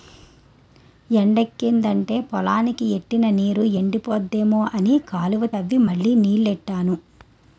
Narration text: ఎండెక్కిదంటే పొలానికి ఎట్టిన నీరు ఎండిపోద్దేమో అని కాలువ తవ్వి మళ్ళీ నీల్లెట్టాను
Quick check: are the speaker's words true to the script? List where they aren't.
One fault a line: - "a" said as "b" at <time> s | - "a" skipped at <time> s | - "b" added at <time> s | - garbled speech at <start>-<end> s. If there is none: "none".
none